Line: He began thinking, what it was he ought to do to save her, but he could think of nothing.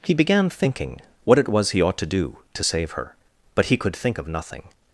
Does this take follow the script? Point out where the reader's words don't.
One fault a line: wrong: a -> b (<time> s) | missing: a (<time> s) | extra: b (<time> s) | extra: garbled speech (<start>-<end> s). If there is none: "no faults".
no faults